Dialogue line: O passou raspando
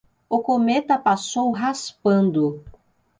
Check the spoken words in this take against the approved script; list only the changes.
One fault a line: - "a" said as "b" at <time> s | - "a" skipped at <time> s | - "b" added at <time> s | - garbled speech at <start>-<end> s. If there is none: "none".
- "cometa" added at 0.4 s